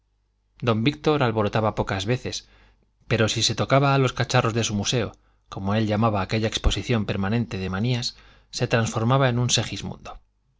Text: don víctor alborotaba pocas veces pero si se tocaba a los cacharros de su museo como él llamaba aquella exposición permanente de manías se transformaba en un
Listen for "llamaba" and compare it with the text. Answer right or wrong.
right